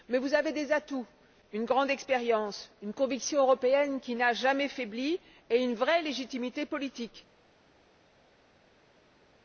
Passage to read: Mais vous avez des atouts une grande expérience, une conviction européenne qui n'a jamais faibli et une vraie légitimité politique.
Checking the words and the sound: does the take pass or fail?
pass